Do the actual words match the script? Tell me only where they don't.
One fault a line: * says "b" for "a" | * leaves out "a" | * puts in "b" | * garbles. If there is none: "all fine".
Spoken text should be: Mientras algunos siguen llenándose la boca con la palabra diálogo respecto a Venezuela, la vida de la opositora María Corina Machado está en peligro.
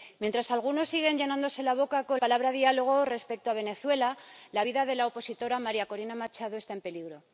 * leaves out "la"